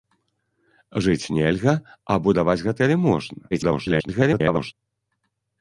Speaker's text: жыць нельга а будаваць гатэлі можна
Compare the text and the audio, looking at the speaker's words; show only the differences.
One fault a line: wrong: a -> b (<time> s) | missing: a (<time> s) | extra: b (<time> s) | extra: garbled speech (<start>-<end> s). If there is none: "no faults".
extra: garbled speech (3.5-4.7 s)